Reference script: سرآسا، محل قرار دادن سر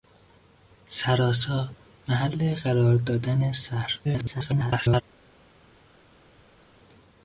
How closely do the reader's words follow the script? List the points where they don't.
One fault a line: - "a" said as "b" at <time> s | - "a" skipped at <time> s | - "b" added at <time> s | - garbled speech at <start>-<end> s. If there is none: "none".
- garbled speech at 4.0-5.0 s